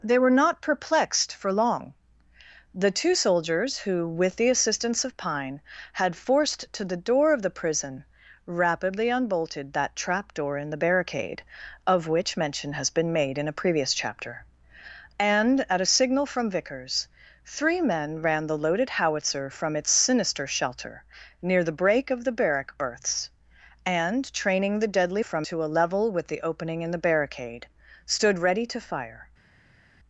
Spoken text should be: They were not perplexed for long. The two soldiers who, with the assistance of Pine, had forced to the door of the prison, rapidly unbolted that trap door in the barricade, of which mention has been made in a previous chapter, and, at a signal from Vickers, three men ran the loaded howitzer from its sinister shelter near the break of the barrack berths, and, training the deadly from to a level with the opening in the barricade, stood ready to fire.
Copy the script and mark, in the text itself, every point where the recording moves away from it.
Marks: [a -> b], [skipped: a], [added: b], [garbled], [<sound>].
They were not perplexed for long. The two soldiers who, with the assistance of Pine, had forced to the door of the prison, rapidly unbolted that trap door in the barricade, of which mention has been made in a previous chapter, and, at a signal from Vickers, three men ran the loaded howitzer from its sinister shelter near the break of the barrack berths, and, training the deadly from to a level with the opening in the barricade, stood ready to fire.